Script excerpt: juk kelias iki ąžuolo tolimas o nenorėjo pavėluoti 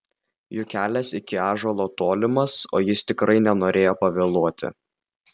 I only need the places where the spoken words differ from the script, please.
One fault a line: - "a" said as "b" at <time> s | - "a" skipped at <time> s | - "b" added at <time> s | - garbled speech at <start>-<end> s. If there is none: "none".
- "jis tikrai" added at 2.9 s